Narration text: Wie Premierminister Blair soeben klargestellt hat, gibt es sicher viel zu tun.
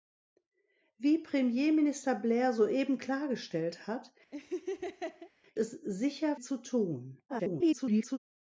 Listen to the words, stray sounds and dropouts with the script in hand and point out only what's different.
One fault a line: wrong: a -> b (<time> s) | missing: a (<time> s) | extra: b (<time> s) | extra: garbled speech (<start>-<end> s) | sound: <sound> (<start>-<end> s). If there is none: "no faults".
missing: gibt (4.1 s)
sound: laugh (4.3-5.3 s)
missing: viel (6.4 s)
extra: garbled speech (7.3-8.2 s)